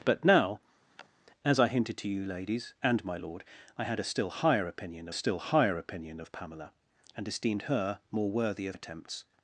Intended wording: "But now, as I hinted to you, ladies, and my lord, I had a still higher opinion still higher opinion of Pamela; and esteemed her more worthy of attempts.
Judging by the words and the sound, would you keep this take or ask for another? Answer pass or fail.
fail